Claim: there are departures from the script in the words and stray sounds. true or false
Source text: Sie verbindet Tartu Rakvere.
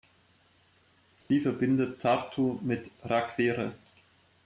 true